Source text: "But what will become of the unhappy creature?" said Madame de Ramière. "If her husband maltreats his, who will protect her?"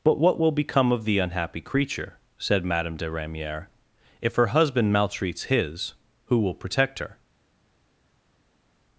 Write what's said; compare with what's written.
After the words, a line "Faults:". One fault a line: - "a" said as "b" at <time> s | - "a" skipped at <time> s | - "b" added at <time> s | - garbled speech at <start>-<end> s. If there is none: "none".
"But what will become of the unhappy creature?" said Madame de Ramière. "If her husband maltreats his, who will protect her?"
Faults:
none